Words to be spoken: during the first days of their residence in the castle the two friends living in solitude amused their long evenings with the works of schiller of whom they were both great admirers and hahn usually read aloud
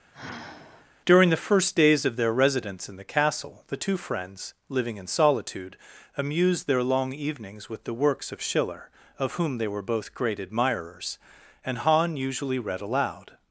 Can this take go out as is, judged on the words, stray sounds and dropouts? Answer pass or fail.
fail